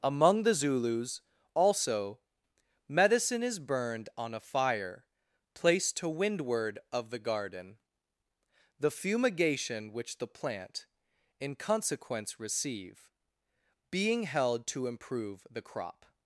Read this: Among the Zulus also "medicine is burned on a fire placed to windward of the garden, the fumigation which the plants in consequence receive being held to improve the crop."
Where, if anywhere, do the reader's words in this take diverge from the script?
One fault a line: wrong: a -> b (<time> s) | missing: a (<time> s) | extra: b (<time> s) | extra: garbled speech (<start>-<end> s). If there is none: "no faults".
wrong: plants -> plant (10.3 s)